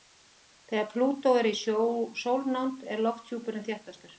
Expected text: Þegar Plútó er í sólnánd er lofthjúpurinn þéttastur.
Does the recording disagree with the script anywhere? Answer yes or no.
no